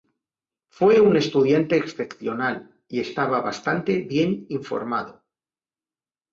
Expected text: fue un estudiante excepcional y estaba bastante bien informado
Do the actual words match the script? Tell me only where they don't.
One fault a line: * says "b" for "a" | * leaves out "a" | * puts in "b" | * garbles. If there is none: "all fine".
all fine